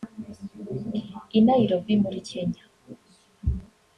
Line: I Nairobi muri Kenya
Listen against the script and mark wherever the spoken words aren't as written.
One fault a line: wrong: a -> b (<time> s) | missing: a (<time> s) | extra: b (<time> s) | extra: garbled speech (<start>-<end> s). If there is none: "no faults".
no faults